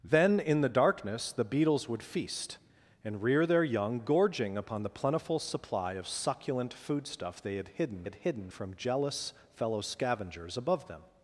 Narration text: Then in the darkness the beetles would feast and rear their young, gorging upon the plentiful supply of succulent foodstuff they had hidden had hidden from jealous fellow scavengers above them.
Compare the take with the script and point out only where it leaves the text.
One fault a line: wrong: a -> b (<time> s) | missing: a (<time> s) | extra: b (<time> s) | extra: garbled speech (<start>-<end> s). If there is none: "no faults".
no faults